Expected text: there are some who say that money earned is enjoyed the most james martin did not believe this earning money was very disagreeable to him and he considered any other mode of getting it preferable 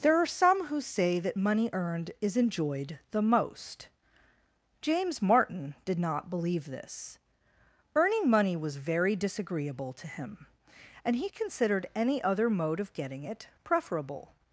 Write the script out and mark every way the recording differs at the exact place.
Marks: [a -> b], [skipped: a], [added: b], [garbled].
there are some who say that money earned is enjoyed the most james martin did not believe this earning money was very disagreeable to him and he considered any other mode of getting it preferable